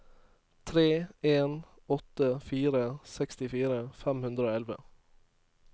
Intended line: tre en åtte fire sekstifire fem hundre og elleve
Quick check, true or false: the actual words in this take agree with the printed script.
true